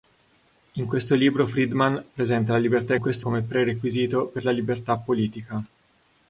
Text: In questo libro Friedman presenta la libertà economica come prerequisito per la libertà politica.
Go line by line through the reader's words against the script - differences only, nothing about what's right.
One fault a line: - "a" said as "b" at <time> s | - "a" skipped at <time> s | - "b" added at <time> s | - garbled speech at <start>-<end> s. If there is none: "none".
- "economica" said as "questo" at 3.0 s